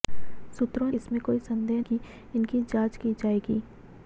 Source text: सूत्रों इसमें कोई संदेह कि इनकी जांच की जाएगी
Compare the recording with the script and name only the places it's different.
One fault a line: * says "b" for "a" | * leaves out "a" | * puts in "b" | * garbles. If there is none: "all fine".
all fine